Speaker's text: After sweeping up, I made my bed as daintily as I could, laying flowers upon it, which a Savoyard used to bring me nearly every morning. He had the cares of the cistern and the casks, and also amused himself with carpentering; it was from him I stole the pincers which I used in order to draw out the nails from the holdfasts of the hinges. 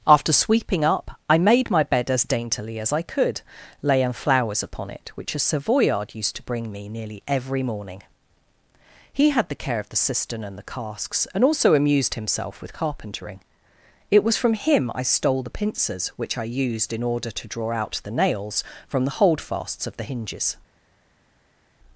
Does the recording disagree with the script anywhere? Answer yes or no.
yes